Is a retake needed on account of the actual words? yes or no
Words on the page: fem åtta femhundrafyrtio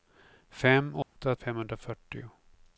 no